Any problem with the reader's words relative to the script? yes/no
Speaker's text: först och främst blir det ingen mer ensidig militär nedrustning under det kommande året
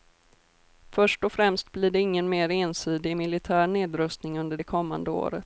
no